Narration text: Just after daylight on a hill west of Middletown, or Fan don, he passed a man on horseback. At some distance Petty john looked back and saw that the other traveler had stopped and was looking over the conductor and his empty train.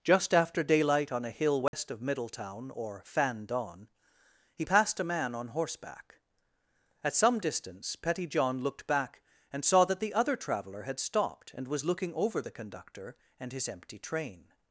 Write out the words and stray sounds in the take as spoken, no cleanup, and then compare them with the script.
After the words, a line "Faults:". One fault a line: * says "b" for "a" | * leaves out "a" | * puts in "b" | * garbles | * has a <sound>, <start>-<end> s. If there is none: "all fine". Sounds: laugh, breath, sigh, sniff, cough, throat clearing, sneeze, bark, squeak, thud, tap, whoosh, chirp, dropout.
Just after daylight on a hill west of Middletown, or Fan don, he passed a man on horseback. At some distance Petty john looked back and saw that the other traveler had stopped and was looking over the conductor and his empty train.
Faults:
* has a dropout, 1.7-1.7 s